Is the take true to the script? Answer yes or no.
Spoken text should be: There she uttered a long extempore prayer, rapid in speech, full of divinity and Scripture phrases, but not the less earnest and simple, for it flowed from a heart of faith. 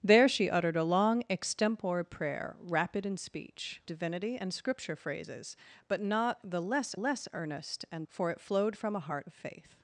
no